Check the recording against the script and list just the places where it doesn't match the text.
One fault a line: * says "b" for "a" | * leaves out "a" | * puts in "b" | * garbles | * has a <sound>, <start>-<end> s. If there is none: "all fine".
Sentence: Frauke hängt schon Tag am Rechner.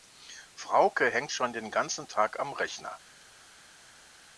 * puts in "den ganzen"